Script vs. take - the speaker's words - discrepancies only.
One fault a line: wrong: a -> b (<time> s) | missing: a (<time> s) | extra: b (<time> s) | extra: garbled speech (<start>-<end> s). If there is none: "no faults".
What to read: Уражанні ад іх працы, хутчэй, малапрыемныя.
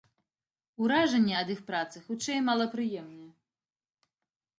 no faults